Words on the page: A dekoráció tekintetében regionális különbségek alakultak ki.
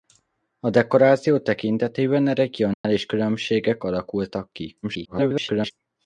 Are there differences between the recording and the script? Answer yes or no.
yes